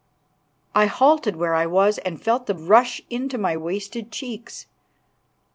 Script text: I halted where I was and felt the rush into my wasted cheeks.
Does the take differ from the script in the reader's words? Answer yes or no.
no